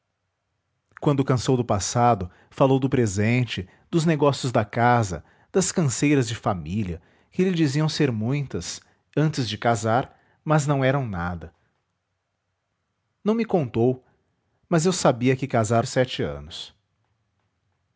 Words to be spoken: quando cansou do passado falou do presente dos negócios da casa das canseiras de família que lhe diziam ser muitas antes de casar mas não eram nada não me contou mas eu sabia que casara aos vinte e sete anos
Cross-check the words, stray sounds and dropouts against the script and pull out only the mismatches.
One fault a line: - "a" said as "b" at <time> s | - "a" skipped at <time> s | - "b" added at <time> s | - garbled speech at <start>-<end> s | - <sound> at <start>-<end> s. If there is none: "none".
- "aos vinte" skipped at 15.9 s